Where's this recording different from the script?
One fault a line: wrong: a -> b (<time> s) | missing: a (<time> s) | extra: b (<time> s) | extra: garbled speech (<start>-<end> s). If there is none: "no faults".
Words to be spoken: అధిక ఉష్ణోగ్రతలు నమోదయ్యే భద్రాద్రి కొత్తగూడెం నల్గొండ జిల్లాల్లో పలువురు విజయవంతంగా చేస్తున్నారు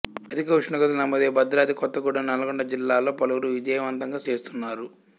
no faults